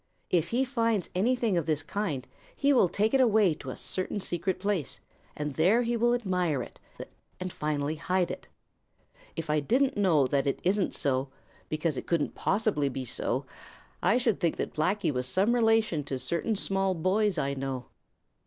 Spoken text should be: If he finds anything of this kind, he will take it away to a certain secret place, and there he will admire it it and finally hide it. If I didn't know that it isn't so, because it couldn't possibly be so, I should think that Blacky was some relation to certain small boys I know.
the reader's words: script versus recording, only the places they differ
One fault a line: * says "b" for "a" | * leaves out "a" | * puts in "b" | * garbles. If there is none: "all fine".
all fine